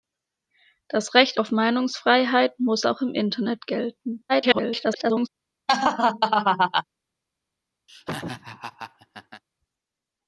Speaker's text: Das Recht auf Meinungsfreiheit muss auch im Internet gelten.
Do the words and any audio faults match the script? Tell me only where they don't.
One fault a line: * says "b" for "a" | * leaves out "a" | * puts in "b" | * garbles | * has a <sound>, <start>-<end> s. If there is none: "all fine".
* garbles
* has a laugh, 5.7-6.8 s
* has a laugh, 7.9-9.4 s